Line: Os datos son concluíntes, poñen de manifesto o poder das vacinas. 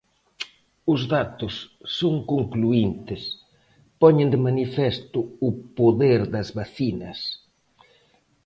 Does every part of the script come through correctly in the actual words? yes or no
yes